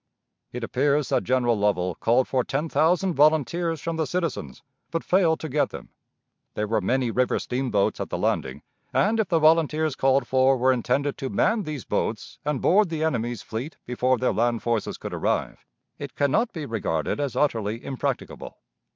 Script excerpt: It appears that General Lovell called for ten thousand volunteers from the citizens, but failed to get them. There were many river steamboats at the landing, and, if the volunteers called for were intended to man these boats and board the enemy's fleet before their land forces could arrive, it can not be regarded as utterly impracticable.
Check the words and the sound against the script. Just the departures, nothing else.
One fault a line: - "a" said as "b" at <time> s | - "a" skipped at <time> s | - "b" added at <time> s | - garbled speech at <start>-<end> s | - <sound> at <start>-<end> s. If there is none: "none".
none